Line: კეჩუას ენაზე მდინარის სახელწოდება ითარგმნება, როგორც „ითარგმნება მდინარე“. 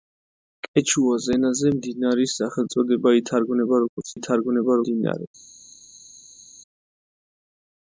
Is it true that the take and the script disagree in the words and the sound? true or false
false